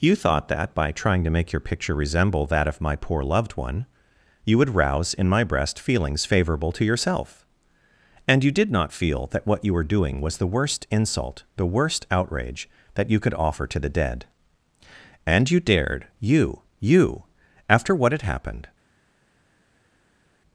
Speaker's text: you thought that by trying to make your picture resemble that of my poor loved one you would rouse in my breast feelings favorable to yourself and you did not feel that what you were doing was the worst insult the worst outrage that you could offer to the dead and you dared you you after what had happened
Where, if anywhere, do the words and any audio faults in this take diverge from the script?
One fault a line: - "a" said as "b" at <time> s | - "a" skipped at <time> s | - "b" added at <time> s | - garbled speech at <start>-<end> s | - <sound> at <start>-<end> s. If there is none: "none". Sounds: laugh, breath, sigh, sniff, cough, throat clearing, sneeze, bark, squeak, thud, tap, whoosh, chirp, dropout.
none